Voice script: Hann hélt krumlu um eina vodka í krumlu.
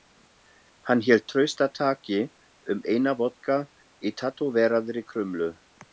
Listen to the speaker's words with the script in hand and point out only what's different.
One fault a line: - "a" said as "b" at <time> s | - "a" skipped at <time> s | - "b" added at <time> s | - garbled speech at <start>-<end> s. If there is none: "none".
- "krumlu" said as "traustataki" at 1.3 s
- "tattóveraðri" added at 4.2 s